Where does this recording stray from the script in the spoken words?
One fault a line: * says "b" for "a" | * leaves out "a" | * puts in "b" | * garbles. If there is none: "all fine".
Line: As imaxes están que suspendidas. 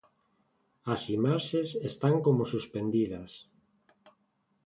* says "como" for "que"